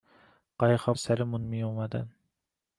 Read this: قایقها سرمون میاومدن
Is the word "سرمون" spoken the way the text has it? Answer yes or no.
yes